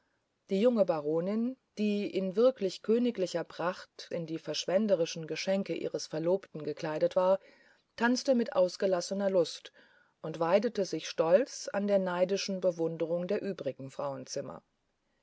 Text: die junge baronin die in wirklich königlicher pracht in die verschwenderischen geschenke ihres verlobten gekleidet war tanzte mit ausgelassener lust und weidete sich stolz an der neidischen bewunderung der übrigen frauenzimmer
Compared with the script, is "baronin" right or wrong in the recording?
right